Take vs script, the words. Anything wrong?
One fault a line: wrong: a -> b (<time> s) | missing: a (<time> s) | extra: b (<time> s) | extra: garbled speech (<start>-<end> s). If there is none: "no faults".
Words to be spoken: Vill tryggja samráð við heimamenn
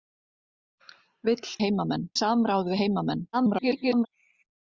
wrong: tryggja -> heimamenn (1.6 s)
extra: garbled speech (3.3-4.1 s)